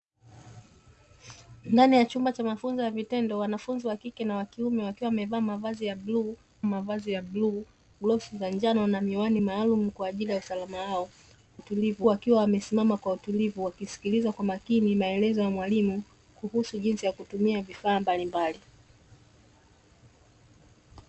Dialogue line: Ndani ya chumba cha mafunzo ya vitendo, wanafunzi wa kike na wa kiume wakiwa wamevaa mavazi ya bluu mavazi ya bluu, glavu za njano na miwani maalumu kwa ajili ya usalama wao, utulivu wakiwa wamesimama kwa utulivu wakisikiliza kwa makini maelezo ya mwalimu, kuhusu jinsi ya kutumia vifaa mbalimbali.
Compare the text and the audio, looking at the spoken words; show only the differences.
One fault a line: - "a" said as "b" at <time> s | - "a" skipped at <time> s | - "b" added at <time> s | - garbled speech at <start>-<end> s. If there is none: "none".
none